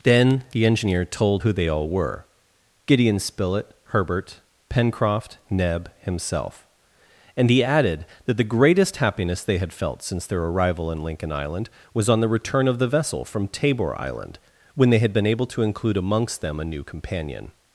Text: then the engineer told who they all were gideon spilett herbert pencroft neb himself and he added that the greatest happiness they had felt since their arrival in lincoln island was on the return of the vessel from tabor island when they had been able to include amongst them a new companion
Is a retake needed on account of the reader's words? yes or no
no